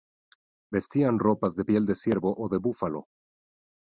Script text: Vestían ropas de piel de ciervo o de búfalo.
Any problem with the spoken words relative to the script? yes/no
no